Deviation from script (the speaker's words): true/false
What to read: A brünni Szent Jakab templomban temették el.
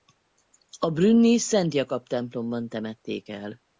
false